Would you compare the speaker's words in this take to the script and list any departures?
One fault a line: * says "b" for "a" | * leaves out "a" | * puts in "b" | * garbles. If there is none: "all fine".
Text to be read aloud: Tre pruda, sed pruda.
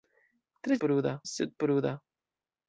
all fine